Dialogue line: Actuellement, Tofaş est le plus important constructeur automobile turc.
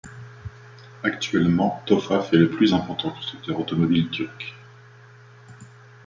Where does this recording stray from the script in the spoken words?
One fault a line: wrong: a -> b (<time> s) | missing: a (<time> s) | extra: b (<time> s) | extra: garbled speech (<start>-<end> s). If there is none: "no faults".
no faults